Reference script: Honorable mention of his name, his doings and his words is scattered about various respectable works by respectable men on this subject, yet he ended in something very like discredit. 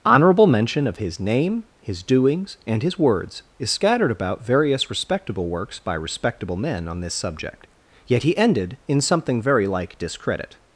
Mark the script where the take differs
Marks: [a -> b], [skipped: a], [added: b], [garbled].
Honorable mention of his name, his doings and his words is scattered about various respectable works by respectable men on this subject, yet he ended in something very like discredit.